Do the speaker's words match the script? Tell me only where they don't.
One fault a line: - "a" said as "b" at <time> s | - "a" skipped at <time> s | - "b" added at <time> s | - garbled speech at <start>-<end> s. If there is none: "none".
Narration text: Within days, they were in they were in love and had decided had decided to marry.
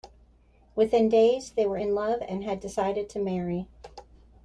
- "they were in" skipped at 1.9 s
- "had decided" skipped at 3.1 s